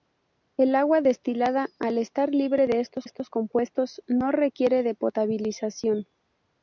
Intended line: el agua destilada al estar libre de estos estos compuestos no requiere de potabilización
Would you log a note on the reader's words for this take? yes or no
no